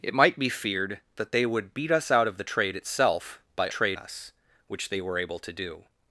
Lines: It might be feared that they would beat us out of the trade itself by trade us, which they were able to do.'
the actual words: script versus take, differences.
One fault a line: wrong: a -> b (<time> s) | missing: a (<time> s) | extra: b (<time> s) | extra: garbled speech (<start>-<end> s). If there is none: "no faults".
no faults